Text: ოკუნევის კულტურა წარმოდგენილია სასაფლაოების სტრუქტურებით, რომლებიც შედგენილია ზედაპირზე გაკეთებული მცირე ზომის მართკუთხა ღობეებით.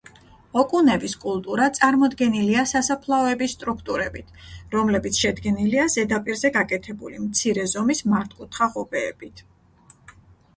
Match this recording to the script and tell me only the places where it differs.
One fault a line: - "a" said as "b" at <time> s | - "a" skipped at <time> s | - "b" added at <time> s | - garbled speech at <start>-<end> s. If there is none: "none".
none